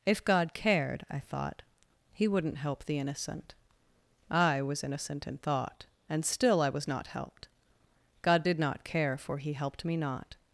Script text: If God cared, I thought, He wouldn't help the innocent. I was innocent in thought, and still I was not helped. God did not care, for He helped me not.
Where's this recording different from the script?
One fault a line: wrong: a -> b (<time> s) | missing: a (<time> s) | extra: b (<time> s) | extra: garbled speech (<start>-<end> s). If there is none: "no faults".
no faults